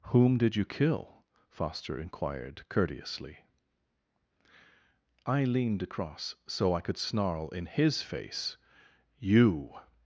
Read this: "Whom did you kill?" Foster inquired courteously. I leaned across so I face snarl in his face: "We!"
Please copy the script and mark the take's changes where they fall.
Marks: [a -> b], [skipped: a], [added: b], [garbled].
"Whom did you kill?" Foster inquired courteously. I leaned across so I [face -> could] snarl in his face: ["We!" -> You]